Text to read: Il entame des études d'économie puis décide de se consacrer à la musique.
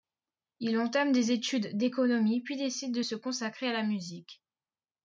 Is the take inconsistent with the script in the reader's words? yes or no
no